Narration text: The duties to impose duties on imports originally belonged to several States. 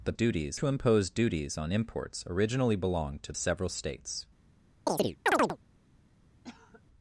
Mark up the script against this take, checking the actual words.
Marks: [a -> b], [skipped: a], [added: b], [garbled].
The duties to impose duties on imports originally belonged to several States.